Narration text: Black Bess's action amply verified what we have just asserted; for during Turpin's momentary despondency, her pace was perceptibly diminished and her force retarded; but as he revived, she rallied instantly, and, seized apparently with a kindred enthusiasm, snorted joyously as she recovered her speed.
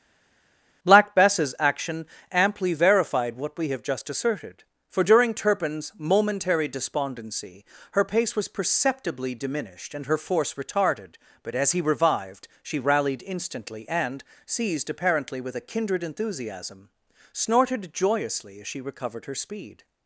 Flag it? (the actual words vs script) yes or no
no